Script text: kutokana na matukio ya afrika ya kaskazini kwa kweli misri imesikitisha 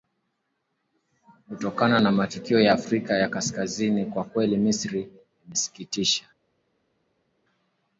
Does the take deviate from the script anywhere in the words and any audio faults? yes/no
no